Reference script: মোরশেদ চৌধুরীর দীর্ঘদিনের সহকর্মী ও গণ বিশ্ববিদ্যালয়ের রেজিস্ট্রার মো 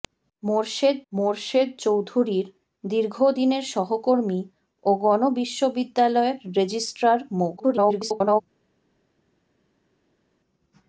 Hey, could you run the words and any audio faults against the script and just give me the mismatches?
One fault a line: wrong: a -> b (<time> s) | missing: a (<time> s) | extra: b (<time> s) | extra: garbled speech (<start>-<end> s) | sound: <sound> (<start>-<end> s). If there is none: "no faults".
extra: মোরশেদ (1.1 s)
extra: garbled speech (7.6-8.4 s)